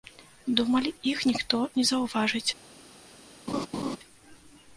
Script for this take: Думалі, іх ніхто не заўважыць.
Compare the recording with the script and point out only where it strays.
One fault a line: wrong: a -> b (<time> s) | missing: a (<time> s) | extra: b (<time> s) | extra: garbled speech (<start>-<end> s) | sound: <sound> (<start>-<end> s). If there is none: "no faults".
sound: laugh (3.5-4.0 s)